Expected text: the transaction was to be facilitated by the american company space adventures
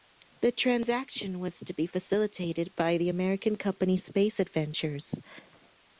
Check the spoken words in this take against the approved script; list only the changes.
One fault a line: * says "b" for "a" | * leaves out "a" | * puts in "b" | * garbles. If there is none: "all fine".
all fine